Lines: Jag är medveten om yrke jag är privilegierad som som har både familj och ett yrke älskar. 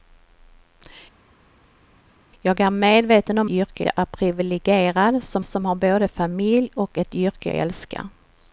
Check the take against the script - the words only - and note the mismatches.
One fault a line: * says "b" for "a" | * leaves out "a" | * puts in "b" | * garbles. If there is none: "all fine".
all fine